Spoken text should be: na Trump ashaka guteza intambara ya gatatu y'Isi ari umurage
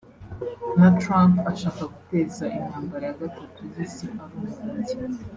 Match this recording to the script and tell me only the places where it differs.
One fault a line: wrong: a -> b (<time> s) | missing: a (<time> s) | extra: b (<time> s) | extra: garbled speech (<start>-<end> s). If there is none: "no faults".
no faults